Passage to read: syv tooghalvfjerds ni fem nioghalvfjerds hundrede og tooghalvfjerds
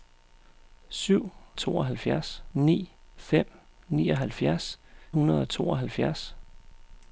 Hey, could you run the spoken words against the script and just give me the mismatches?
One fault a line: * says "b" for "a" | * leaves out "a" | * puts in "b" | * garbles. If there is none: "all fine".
all fine